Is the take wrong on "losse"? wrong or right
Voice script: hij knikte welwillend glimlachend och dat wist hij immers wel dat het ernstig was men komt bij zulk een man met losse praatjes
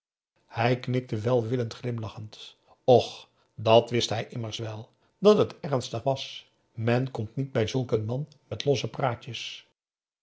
right